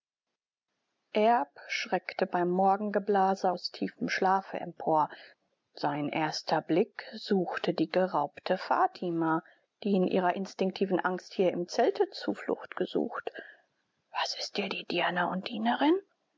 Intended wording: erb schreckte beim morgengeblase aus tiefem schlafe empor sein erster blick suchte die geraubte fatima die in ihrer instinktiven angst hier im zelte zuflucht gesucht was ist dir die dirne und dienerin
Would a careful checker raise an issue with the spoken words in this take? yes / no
no